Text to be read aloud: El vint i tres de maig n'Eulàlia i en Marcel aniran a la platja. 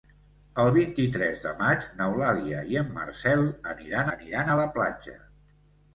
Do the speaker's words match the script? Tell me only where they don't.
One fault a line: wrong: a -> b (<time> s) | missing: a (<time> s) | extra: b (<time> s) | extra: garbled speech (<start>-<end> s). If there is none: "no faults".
extra: aniran (4.2 s)